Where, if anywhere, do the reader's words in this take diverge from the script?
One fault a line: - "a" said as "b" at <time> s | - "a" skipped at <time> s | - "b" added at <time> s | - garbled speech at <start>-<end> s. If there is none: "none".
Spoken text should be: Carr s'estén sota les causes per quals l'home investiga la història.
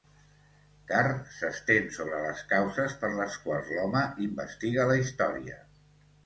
- "sota" said as "sobre" at 2.0 s
- "les" added at 3.2 s